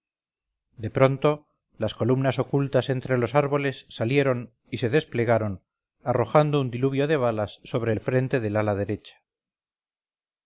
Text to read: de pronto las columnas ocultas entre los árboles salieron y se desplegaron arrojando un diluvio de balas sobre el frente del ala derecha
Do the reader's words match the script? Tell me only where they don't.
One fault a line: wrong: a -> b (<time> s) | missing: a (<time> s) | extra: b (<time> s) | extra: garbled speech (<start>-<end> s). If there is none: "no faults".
no faults